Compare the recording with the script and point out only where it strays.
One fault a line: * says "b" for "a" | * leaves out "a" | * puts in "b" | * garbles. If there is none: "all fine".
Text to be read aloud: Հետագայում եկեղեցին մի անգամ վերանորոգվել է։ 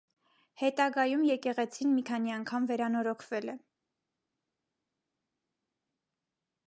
* puts in "քանի"